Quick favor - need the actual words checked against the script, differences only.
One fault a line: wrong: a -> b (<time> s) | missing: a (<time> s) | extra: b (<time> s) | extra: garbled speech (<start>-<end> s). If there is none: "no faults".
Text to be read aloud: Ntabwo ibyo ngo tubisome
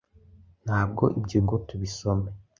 no faults